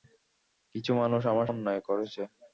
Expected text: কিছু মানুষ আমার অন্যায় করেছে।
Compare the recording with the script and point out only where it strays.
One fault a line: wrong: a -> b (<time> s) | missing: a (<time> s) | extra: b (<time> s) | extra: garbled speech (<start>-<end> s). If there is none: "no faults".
no faults